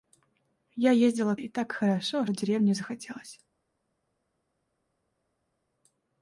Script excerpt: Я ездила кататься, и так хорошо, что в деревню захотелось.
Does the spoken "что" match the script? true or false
false